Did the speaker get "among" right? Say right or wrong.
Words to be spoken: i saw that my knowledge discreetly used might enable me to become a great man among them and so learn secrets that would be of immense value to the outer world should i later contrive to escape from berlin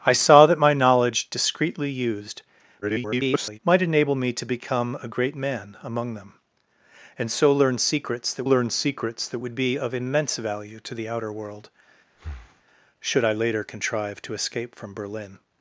right